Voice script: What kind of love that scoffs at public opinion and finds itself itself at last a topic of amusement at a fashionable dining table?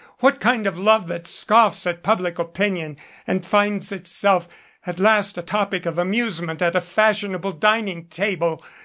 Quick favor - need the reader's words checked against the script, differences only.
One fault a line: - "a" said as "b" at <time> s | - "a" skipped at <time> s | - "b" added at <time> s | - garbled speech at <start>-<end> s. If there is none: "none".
- "itself" skipped at 4.5 s